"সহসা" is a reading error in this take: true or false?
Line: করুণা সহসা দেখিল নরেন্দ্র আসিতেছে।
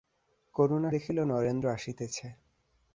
true